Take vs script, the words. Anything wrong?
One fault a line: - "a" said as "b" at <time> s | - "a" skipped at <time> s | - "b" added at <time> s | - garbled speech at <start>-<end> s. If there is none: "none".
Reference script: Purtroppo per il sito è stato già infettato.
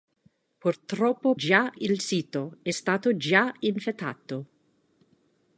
- "per" said as "già" at 1.3 s